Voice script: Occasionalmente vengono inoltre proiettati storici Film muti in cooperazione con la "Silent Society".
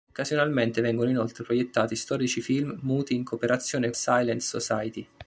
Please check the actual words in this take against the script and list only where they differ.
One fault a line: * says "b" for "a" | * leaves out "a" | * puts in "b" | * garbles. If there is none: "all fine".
* leaves out "con la"